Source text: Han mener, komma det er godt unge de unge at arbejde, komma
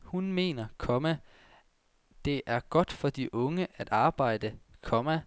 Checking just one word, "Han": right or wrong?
wrong